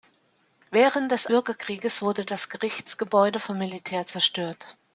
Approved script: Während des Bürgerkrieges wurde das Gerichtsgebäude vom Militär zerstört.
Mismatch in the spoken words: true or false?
false